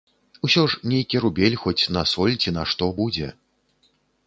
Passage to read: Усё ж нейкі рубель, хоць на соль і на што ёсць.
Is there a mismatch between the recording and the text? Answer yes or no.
yes